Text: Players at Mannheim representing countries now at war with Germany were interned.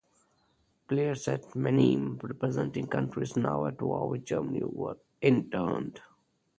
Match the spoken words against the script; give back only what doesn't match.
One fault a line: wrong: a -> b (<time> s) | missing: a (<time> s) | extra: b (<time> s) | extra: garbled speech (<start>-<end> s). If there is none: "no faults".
no faults